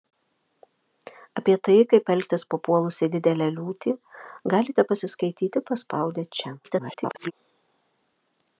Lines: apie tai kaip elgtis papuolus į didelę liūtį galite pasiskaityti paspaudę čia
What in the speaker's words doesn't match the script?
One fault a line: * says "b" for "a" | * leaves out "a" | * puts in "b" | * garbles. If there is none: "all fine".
* garbles